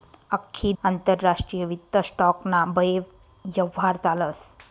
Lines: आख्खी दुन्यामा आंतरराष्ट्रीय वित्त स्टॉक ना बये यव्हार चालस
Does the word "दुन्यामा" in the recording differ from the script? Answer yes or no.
yes